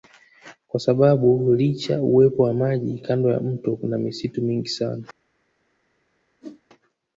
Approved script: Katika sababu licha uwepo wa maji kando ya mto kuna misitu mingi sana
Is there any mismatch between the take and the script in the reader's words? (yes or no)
yes